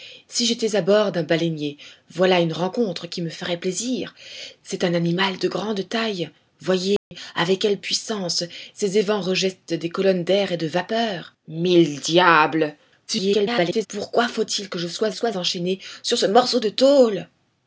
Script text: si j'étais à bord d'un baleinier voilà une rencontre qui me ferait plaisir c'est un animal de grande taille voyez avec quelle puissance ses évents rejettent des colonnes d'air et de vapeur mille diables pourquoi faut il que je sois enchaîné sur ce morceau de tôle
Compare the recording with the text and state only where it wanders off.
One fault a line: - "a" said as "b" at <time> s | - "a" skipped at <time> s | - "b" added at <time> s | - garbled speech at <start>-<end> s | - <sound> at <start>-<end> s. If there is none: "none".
- dropout at 7.0-7.1 s
- garbled speech at 13.1-13.9 s
- "sois" added at 15.1 s